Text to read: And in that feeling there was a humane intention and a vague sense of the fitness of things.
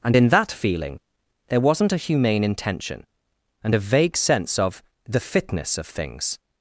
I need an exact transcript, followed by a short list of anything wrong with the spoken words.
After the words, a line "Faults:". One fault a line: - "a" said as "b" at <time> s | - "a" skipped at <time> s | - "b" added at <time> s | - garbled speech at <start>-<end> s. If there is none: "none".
And in that feeling there wasn't a humane intention and a vague sense of the fitness of things.
Faults:
- "was" said as "wasn't" at 1.6 s